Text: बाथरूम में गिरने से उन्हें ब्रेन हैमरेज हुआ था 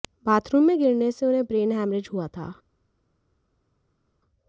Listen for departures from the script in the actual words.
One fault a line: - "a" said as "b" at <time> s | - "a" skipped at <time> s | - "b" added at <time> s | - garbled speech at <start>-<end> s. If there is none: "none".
none